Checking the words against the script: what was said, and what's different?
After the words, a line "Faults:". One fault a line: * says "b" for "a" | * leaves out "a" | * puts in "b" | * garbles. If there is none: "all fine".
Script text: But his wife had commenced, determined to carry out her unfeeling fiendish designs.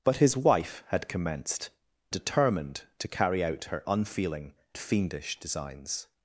But his wife had commenced, determined to carry out her unfeeling fiendish designs.
Faults:
all fine